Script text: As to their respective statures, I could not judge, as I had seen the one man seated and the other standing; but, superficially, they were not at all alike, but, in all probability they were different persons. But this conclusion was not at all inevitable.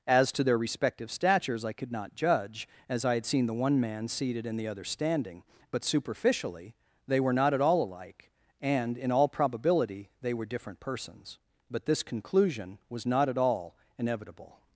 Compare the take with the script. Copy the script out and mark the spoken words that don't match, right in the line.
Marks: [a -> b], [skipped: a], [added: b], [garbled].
As to their respective statures, I could not judge, as I had seen the one man seated and the other standing; but, superficially, they were not at all alike, [but, -> and] in all probability they were different persons. But this conclusion was not at all inevitable.